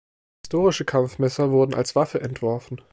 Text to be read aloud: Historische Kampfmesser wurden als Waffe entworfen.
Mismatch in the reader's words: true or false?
false